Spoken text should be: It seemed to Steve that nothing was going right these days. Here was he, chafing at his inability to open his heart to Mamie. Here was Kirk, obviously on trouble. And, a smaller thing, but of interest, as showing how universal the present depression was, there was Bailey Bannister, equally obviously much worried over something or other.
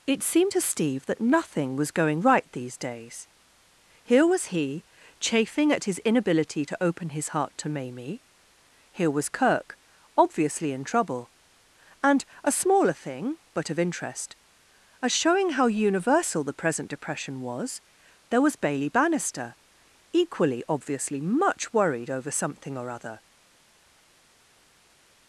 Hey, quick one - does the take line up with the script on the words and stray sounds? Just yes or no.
no